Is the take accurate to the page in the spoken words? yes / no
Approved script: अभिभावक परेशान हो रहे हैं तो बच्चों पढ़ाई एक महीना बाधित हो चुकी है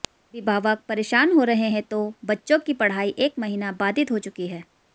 no